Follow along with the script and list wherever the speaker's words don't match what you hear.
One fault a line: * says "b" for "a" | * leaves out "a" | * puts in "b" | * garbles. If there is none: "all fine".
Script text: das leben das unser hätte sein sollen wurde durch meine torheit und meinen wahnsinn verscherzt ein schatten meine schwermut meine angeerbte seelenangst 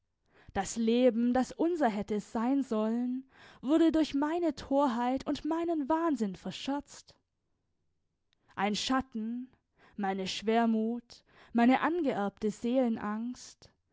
all fine